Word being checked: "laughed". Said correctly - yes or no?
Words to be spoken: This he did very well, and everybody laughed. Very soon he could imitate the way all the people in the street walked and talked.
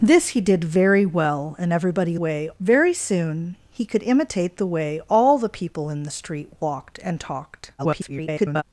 no